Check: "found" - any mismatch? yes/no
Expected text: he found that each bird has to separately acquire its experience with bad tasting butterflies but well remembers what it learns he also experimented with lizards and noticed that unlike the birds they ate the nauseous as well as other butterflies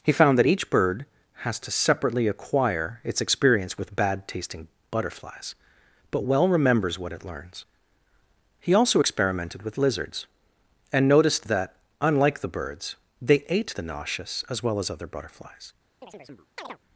no